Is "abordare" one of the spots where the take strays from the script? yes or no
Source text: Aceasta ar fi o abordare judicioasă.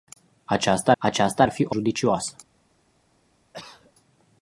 yes